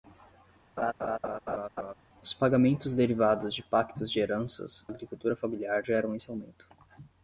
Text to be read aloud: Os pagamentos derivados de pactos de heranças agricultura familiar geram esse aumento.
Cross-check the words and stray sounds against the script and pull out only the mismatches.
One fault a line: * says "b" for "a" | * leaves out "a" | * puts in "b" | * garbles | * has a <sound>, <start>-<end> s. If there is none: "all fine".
* has a laugh, 0.8-1.9 s